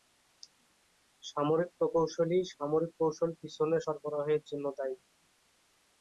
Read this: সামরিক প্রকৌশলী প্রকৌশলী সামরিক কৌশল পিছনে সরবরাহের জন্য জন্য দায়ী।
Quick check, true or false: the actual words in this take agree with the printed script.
false